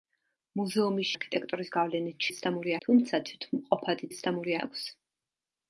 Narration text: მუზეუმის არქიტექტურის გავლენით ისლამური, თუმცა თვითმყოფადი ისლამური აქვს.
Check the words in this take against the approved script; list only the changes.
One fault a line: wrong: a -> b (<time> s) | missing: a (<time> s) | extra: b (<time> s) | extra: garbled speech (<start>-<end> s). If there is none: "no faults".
no faults